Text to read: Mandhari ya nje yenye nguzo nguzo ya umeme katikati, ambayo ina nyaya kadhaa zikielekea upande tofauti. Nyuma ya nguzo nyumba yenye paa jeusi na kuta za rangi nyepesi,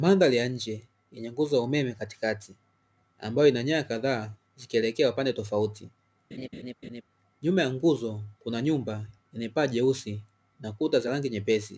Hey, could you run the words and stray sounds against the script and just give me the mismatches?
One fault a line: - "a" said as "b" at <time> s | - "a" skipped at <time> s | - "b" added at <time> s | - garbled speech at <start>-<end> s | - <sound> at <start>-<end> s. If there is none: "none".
- "nguzo" skipped at 1.6 s
- laugh at 6.3-7.0 s
- "kuna" added at 8.4 s